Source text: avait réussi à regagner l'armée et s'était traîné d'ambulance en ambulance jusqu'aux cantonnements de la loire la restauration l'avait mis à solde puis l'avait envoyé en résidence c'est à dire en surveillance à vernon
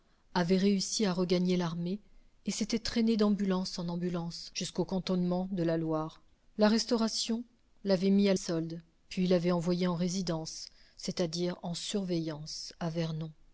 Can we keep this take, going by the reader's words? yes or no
yes